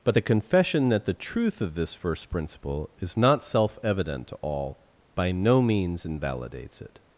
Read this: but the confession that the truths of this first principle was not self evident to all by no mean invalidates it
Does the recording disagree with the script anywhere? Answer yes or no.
yes